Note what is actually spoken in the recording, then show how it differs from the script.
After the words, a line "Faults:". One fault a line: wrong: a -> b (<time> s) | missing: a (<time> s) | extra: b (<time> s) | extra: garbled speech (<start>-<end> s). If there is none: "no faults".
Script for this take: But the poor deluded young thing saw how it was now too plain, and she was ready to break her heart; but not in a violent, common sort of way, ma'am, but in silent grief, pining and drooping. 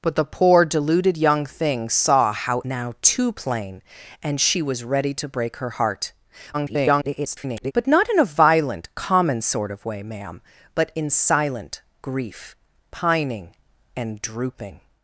But the poor deluded young thing saw how now too plain, and she was ready to break her heart; [garbled] but not in a violent, common sort of way, ma'am, but in silent grief, pining and drooping.
Faults:
missing: it was (2.6 s)
extra: garbled speech (6.5-7.7 s)